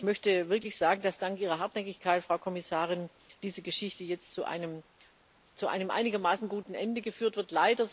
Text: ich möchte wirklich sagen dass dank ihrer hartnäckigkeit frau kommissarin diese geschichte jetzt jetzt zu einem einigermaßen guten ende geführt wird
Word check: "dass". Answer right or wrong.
right